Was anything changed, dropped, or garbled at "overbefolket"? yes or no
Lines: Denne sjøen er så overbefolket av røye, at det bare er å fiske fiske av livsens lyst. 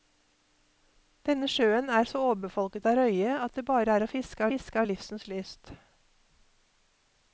no